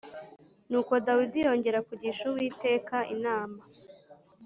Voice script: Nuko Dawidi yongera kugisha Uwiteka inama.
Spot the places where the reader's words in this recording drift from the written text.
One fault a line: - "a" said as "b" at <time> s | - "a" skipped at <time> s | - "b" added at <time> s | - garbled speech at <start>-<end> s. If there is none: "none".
none